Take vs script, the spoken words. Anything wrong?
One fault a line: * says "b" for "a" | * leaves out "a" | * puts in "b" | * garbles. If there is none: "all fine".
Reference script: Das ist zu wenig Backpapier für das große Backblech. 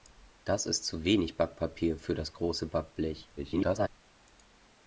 * garbles